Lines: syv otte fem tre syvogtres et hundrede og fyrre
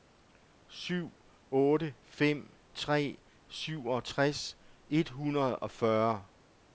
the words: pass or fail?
pass